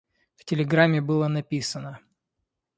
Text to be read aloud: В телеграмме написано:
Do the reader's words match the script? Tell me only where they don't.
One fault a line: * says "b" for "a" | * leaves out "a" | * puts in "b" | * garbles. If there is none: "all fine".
* puts in "было"